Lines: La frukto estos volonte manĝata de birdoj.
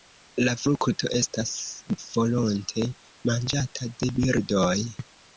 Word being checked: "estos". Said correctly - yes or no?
no